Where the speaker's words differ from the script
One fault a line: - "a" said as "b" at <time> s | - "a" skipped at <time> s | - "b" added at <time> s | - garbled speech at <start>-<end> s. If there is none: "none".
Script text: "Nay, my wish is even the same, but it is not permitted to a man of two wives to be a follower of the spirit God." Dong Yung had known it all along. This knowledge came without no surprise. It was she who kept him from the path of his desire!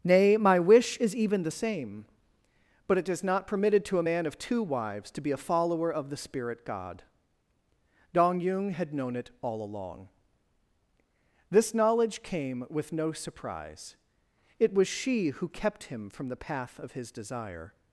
- "without" said as "with" at 12.7 s